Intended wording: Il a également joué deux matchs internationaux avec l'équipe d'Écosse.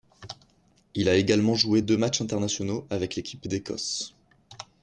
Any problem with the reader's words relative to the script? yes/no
no